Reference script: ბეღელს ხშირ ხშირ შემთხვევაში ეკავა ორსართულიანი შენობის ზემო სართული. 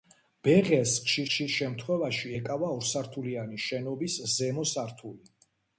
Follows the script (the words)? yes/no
yes